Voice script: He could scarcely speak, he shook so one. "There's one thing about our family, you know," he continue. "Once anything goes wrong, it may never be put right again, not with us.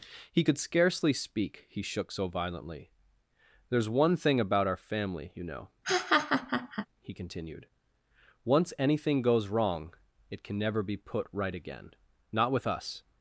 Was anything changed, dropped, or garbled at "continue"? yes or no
yes